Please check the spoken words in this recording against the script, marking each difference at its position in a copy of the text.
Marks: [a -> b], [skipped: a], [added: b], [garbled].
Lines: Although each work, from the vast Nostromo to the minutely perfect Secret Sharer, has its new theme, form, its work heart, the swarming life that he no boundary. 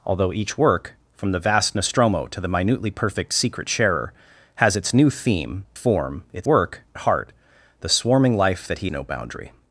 Although each work, from the vast Nostromo to the minutely perfect Secret Sharer, has its new theme, form, its work heart, the swarming life that he no boundary.